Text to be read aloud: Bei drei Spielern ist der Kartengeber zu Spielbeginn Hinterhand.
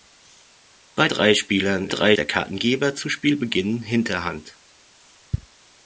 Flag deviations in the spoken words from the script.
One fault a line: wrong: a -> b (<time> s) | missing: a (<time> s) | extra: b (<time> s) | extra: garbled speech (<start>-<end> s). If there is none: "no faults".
wrong: ist -> drei (1.9 s)